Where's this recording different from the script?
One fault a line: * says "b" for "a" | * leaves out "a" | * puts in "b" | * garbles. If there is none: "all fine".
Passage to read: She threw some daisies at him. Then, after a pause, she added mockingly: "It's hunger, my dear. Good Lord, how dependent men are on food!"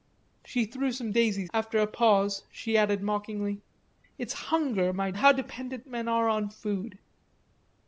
* leaves out "at him Then"
* leaves out "dear Good Lord"